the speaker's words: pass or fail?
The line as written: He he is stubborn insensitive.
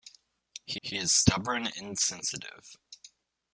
pass